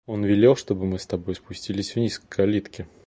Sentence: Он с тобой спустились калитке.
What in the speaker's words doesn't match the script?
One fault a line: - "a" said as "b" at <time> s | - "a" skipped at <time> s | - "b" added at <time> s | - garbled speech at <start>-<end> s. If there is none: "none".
- "велел чтобы мы" added at 0.2 s
- "вниз к" added at 1.9 s